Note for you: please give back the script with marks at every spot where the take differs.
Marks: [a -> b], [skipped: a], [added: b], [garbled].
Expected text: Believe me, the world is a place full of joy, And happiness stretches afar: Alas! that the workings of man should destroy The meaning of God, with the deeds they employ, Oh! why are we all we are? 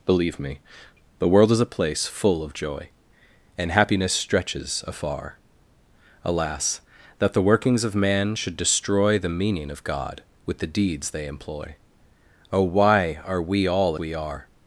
Believe me, the world is a place full of joy, And happiness stretches afar: Alas! that the workings of man should destroy The meaning of God, with the deeds they employ, Oh! why are we all we are?